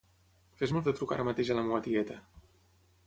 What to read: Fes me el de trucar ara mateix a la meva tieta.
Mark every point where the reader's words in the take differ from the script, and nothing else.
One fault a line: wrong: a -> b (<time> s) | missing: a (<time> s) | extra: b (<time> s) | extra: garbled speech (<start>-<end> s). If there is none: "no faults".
no faults